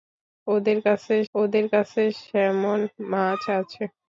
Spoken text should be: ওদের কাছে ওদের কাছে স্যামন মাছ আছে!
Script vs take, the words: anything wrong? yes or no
no